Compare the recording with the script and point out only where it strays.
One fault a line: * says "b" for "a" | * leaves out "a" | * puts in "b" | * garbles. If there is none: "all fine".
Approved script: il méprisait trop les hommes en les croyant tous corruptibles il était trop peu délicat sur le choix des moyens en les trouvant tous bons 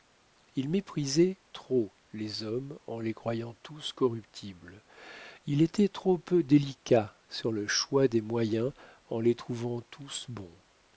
all fine